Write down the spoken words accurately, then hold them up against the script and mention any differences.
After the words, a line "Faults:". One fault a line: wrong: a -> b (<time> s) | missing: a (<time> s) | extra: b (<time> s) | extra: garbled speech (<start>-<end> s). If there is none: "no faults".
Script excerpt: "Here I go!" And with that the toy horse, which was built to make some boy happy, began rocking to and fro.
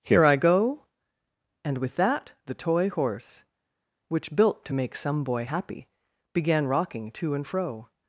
"Here I go!" And with that the toy horse, which built to make some boy happy, began rocking to and fro.
Faults:
missing: was (4.3 s)